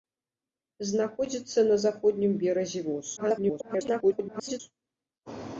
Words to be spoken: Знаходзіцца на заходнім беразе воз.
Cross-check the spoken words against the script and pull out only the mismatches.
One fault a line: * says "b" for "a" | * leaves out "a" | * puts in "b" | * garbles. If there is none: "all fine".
* garbles